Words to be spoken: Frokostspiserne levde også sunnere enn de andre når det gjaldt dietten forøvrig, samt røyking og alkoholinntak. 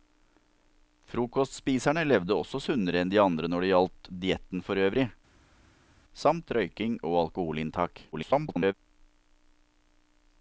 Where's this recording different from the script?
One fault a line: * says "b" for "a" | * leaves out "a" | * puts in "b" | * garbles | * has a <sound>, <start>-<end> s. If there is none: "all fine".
* garbles